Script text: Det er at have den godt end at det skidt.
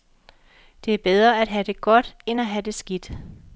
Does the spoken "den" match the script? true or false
false